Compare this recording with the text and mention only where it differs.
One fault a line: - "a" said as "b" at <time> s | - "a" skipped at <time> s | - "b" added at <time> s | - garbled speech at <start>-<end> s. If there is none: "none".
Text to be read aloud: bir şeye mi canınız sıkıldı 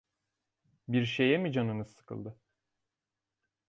none